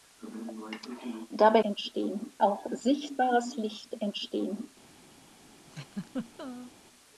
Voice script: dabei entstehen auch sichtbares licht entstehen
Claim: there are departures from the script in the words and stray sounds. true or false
true